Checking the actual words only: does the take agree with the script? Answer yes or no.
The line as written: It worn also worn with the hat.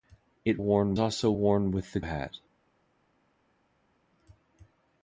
yes